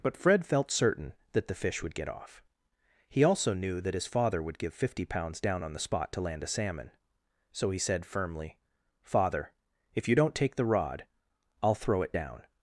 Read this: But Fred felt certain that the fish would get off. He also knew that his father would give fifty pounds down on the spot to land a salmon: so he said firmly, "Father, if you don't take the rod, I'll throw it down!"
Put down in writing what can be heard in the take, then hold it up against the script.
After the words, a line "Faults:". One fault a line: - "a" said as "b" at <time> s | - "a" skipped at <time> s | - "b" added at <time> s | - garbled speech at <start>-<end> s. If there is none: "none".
But Fred felt certain that the fish would get off. He also knew that his father would give fifty pounds down on the spot to land a salmon: so he said firmly, "Father, if you don't take the rod, I'll throw it down!"
Faults:
none